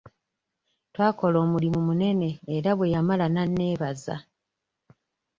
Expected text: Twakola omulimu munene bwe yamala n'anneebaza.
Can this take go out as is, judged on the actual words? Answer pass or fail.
fail